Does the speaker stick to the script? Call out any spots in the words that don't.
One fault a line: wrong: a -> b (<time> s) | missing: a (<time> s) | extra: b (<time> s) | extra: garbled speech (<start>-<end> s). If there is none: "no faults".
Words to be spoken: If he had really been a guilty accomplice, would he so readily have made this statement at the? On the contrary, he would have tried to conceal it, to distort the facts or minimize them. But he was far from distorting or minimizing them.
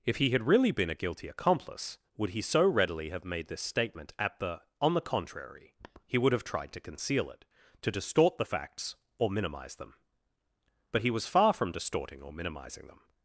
no faults